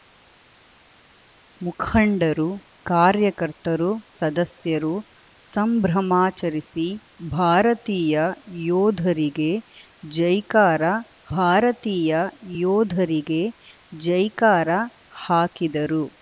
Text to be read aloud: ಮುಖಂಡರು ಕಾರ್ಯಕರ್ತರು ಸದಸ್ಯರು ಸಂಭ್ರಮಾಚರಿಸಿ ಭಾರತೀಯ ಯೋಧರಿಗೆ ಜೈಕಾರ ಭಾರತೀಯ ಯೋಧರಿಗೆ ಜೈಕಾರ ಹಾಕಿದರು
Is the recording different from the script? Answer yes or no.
no